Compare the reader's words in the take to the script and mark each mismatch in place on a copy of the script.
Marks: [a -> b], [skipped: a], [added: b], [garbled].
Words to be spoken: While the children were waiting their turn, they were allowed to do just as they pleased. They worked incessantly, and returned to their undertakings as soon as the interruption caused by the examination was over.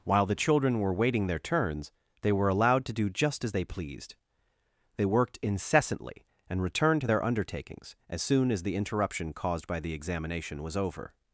While the children were waiting their [turn, -> turns] they were allowed to do just as they pleased. They worked incessantly, and returned to their undertakings as soon as the interruption caused by the examination was over.